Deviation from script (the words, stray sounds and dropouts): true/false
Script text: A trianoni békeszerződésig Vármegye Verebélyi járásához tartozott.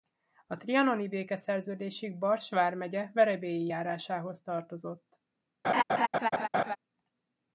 true